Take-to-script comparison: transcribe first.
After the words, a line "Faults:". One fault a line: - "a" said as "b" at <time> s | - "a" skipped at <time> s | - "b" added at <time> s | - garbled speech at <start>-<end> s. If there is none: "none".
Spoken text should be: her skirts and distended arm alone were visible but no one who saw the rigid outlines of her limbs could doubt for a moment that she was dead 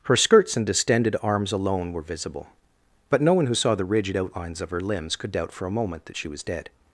her skirts and distended arms alone were visible but no one who saw the rigid outlines of her limbs could doubt for a moment that she was dead
Faults:
- "arm" said as "arms" at 1.2 s